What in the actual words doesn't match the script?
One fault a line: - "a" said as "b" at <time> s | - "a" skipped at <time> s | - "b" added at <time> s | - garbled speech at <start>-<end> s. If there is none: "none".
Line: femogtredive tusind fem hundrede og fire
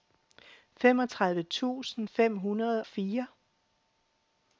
- "og" skipped at 2.8 s